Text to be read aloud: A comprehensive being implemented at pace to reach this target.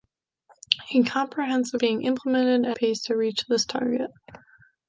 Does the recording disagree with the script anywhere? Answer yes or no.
no